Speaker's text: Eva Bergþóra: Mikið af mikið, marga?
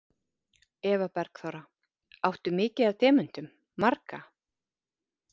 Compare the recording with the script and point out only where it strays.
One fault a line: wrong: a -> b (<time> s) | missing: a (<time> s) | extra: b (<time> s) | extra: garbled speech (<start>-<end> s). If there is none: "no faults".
extra: Áttu (2.3 s)
wrong: mikið -> demöntum (3.0 s)